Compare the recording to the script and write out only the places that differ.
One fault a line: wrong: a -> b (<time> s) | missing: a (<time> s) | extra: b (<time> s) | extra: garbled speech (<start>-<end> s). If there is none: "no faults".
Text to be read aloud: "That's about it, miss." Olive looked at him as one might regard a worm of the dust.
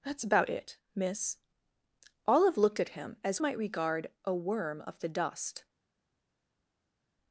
missing: one (3.4 s)